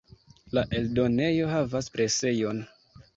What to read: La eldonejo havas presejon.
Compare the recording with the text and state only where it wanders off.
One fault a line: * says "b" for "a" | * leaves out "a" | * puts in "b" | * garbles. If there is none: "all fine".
all fine